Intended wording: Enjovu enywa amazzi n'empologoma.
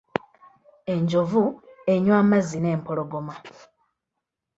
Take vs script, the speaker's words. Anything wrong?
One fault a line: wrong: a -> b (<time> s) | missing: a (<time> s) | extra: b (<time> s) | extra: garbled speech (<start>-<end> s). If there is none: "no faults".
no faults